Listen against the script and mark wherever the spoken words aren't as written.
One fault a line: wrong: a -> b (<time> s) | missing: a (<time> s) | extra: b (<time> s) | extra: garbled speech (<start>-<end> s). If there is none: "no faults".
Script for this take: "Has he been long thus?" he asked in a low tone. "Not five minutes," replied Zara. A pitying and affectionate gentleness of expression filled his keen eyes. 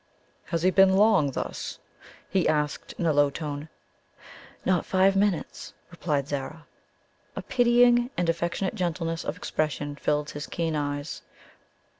no faults